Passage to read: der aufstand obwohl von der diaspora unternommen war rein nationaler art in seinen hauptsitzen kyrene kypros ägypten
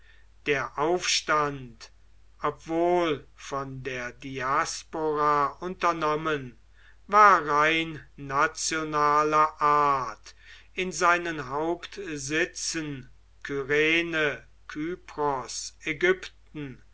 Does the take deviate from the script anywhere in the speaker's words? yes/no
no